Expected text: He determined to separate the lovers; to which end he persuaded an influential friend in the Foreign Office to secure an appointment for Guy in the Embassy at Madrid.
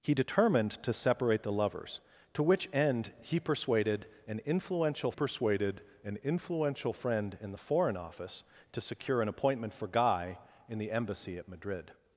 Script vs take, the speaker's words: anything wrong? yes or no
yes